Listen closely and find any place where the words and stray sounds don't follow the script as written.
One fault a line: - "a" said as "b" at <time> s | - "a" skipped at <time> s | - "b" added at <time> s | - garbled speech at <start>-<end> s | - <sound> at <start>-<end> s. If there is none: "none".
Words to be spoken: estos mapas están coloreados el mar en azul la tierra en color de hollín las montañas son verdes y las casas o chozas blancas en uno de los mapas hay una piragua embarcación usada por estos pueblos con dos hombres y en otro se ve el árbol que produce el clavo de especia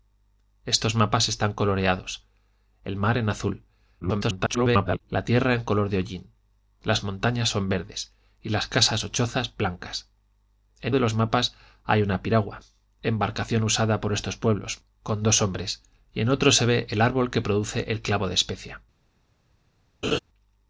- garbled speech at 4.0-5.0 s
- "uno" skipped at 10.9 s
- laugh at 20.0-20.2 s